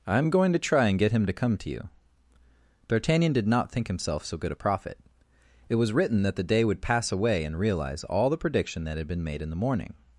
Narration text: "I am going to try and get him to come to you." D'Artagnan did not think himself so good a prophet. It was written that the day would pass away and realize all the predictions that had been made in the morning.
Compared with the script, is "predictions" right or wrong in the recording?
wrong